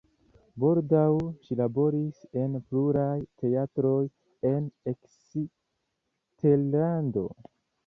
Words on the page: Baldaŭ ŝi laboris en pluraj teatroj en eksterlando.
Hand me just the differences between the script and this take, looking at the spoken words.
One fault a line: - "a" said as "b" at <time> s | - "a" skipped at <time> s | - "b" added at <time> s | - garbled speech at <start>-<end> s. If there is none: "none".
none